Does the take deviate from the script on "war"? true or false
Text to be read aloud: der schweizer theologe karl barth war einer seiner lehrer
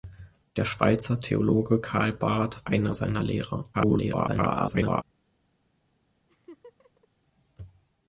true